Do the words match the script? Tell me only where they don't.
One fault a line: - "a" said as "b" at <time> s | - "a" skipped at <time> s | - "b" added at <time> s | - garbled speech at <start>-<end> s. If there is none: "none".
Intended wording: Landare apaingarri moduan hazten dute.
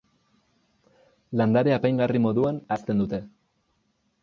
none